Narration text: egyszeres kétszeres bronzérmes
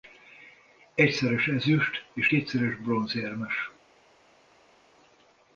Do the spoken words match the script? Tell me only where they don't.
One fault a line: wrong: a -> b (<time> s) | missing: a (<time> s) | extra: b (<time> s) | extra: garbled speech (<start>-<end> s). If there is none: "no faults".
extra: ezüst és (1.5 s)